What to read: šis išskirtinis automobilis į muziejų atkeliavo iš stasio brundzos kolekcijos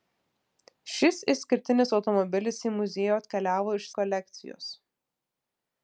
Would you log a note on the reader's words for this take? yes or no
yes